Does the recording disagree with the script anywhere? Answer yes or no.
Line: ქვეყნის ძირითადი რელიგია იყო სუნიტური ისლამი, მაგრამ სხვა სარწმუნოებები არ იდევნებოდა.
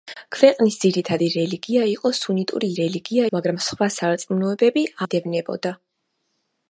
yes